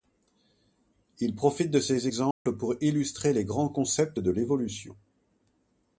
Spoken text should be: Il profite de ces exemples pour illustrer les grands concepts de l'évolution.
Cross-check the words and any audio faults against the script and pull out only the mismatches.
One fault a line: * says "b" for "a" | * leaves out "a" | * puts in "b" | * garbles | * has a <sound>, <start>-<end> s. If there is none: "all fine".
* has a dropout, 2.3-2.5 s